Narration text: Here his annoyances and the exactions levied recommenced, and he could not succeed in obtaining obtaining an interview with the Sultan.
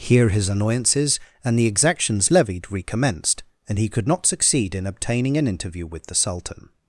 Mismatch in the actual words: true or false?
true